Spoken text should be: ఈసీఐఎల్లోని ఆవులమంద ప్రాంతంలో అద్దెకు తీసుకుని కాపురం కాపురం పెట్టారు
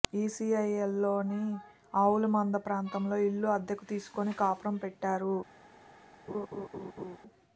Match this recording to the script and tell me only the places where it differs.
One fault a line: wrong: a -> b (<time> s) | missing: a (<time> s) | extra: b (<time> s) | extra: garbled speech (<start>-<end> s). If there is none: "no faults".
extra: ఇల్లు (3.3 s)
missing: కాపురం (4.8 s)